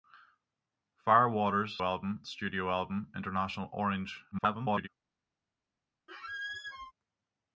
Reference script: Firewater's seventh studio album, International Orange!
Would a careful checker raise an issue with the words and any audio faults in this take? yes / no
yes